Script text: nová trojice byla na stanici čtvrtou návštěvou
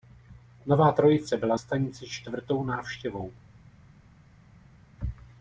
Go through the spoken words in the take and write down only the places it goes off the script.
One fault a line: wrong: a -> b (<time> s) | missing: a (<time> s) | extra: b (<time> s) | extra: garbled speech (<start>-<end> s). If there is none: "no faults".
missing: na (1.6 s)